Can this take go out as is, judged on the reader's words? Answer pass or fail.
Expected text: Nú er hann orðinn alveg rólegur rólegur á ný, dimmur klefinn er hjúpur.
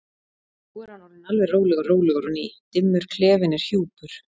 pass